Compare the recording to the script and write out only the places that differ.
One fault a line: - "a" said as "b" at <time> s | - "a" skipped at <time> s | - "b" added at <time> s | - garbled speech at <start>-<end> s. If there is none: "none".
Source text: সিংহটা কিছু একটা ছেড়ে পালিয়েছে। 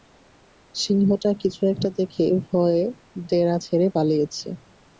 - "দেখে ভয়ে ডেরা" added at 2.0 s